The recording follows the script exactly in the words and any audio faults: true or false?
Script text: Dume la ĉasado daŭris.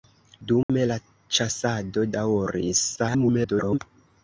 false